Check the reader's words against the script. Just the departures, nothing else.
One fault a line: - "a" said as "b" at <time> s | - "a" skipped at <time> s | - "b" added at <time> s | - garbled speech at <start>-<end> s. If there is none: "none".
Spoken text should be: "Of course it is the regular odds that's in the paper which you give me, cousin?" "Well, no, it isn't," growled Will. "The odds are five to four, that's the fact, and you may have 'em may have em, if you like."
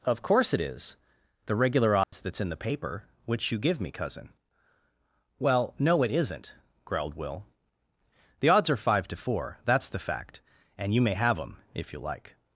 - "may have em" skipped at 11.6 s